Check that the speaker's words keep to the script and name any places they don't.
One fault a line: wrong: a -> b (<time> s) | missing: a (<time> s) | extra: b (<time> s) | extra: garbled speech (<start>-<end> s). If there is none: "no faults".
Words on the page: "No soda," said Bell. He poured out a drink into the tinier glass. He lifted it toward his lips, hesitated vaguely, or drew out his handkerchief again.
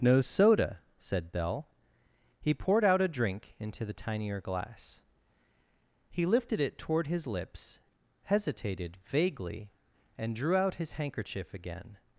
wrong: or -> and (10.2 s)